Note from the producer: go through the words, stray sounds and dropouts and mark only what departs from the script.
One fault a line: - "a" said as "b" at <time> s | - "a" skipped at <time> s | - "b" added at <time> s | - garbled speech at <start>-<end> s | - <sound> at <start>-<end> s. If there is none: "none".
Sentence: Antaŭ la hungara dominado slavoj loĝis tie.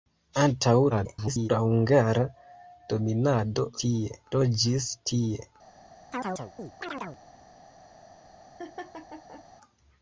- garbled speech at 0.9-1.5 s
- "slavoj" said as "tie" at 3.8 s
- chirp at 6.1-7.2 s
- laugh at 8.6-9.4 s